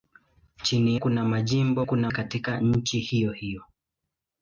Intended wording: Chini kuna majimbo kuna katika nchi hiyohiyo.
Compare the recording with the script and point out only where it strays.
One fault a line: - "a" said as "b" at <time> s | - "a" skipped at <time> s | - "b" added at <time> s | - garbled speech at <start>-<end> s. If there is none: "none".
none